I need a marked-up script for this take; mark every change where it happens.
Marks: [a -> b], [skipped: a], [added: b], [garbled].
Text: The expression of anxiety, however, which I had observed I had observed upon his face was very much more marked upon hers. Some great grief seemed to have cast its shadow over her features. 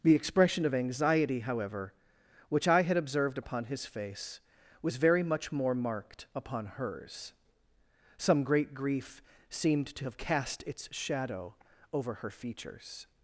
The expression of anxiety, however, which I had observed [skipped: I had observed] upon his face was very much more marked upon hers. Some great grief seemed to have cast its shadow over her features.